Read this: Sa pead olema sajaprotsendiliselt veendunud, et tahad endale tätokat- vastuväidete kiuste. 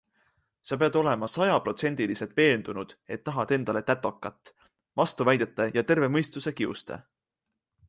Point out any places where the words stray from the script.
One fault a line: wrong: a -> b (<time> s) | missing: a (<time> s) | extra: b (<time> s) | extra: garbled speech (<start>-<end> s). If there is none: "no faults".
extra: ja terve mõistuse (5.7 s)